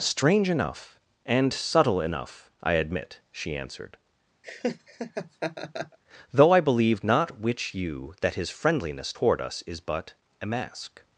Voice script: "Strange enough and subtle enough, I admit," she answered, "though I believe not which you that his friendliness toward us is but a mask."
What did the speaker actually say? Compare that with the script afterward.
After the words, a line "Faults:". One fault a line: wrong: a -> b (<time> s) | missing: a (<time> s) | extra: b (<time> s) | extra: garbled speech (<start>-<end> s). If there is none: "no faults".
"Strange enough and subtle enough, I admit," she answered, "though I believe not which you that his friendliness toward us is but a mask."
Faults:
no faults